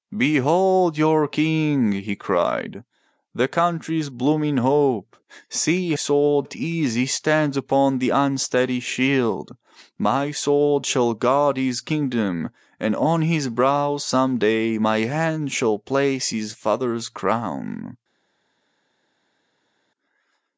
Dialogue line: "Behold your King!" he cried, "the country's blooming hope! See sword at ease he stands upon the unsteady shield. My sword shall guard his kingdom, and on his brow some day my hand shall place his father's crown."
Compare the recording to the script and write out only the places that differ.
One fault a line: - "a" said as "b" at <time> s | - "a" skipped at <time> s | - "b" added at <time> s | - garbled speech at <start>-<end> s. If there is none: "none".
none